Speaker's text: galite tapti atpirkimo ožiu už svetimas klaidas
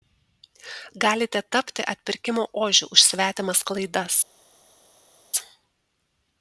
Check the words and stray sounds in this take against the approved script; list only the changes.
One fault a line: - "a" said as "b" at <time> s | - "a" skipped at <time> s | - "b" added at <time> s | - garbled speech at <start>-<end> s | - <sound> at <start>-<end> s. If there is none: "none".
none